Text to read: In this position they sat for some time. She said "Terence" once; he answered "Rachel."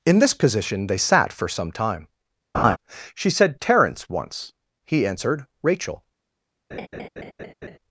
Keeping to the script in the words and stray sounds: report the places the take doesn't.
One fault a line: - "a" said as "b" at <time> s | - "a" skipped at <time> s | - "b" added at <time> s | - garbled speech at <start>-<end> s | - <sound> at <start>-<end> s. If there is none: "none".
- laugh at 2.5-2.8 s
- laugh at 6.7-7.8 s